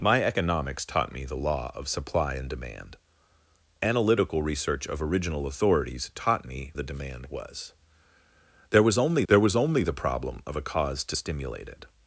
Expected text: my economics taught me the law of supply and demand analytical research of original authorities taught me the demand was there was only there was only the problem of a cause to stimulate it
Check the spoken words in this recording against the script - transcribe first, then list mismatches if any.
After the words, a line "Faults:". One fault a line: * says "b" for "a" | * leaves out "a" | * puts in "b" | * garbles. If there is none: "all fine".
my economics taught me the law of supply and demand analytical research of original authorities taught me the demand was there was only there was only the problem of a cause to stimulate it
Faults:
all fine